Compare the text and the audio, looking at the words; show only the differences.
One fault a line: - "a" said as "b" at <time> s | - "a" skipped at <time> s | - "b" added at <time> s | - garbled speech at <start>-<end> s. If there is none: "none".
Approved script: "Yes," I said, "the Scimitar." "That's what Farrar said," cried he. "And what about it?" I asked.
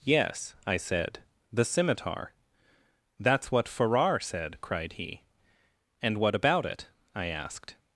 none